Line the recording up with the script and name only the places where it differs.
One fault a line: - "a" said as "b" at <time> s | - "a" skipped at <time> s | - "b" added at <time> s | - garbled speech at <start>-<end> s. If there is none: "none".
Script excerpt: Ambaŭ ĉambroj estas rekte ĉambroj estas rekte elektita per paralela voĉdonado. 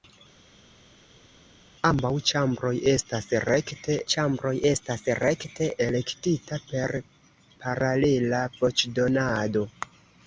none